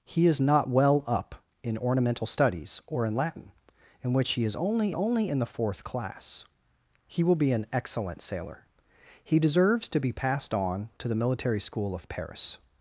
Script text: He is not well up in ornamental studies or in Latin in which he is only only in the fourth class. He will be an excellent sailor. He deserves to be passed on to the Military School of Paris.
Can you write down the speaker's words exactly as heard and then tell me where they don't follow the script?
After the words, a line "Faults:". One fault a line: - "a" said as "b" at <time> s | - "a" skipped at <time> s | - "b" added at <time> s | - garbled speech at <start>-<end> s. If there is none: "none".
He is not well up in ornamental studies or in Latin in which he is only only in the fourth class. He will be an excellent sailor. He deserves to be passed on to the Military School of Paris.
Faults:
none